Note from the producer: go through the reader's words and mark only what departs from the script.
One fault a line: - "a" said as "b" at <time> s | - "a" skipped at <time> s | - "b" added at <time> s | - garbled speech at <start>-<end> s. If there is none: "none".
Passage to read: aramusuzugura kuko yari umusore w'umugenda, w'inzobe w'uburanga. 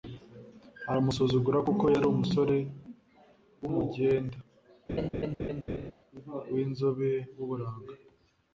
none